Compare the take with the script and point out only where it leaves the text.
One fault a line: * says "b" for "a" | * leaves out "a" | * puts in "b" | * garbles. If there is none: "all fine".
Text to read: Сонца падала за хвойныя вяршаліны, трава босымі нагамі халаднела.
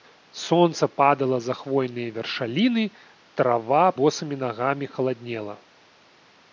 all fine